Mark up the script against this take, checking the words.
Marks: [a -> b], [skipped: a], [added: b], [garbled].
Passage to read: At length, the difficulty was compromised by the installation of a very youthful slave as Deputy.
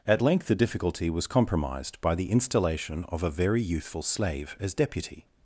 At length, the difficulty was compromised by the installation of a very youthful slave as Deputy.